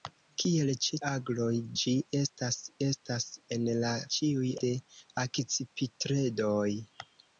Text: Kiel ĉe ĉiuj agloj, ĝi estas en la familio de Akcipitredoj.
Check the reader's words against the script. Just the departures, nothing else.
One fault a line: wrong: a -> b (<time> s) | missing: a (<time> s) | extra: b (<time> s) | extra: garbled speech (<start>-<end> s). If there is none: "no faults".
missing: ĉiuj (1.0 s)
extra: estas (2.9 s)
wrong: familio -> ĉiuj (4.2 s)